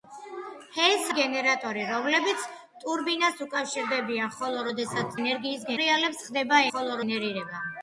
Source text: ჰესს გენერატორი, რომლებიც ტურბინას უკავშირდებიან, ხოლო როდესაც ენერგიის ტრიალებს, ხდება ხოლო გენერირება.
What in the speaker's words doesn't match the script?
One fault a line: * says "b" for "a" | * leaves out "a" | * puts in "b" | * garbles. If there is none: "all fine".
all fine